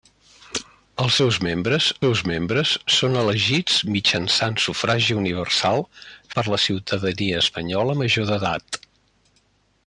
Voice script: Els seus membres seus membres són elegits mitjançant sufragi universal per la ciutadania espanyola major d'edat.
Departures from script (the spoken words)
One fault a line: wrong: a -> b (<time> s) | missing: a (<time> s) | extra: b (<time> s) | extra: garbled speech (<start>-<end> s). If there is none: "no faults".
no faults